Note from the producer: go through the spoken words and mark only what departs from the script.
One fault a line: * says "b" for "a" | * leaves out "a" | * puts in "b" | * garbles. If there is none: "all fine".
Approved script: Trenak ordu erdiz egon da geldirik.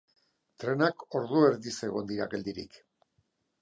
* says "dira" for "da"